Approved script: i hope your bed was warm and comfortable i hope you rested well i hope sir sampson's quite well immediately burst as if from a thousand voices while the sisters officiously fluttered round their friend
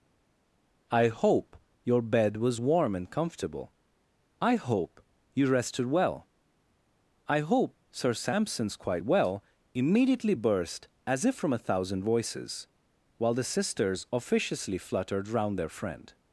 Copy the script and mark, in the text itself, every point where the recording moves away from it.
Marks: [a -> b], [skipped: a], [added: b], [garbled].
i hope your bed was warm and comfortable i hope you rested well i hope sir sampson's quite well immediately burst as if from a thousand voices while the sisters officiously fluttered round their friend